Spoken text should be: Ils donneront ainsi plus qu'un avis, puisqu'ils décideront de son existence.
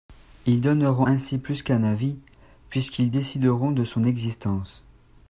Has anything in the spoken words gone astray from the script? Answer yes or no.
no